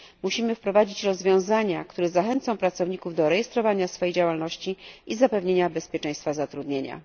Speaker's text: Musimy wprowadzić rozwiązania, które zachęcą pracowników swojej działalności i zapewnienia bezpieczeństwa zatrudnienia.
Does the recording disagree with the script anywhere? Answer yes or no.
yes